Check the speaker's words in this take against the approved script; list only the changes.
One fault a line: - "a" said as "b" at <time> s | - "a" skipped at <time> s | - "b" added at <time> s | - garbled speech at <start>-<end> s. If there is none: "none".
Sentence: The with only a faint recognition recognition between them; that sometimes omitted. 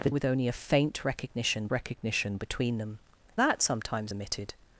none